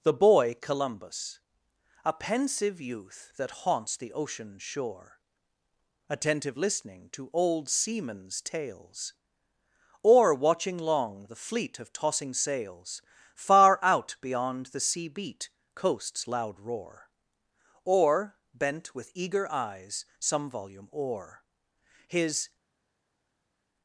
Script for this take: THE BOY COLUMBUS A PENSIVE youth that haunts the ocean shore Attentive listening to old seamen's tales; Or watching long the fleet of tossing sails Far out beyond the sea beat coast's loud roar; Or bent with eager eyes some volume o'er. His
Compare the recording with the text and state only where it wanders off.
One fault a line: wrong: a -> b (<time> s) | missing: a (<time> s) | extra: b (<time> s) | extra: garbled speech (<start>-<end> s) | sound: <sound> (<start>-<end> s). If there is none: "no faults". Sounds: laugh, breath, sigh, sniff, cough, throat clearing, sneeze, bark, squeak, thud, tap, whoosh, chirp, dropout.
no faults